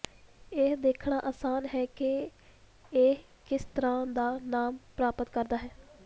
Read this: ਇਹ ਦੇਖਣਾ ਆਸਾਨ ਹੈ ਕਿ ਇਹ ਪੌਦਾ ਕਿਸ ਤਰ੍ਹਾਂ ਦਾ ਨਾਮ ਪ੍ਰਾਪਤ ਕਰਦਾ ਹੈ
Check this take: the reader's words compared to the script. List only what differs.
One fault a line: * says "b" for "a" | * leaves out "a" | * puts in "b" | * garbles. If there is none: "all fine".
* leaves out "ਪੌਦਾ"